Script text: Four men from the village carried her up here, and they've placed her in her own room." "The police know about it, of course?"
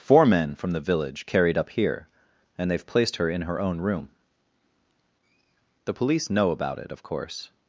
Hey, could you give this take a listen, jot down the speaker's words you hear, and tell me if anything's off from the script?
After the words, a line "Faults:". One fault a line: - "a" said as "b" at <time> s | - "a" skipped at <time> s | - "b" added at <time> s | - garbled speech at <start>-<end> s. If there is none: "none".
Four men from the village carried up here, and they've placed her in her own room." "The police know about it, of course?"
Faults:
- "her" skipped at 1.6 s